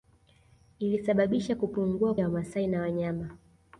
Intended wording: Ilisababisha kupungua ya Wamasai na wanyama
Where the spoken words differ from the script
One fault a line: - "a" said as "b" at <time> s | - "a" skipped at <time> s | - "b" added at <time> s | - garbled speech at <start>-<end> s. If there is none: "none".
none